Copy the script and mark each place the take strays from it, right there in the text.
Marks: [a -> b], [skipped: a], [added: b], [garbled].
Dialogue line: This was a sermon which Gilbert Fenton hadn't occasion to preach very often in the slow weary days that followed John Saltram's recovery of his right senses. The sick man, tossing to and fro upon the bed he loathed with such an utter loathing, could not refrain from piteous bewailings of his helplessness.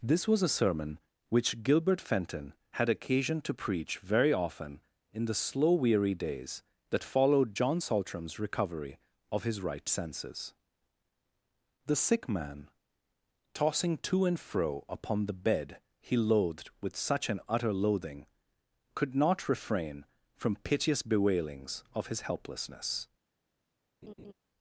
This was a sermon which Gilbert Fenton [hadn't -> had] occasion to preach very often in the slow weary days that followed John Saltram's recovery of his right senses. The sick man, tossing to and fro upon the bed he loathed with such an utter loathing, could not refrain from piteous bewailings of his helplessness.